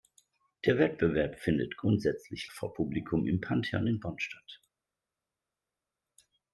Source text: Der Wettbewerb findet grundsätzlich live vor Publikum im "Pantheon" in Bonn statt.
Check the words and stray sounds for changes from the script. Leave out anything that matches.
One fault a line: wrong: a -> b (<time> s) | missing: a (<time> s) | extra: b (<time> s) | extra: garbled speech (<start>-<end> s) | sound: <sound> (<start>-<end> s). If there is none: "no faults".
missing: live (2.5 s)